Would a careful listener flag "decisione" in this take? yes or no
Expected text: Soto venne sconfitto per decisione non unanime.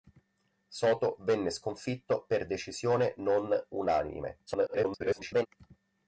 no